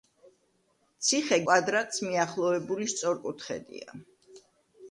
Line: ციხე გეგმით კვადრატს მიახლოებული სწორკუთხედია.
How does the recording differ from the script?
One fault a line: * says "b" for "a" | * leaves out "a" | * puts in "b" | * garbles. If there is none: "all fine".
* leaves out "გეგმით"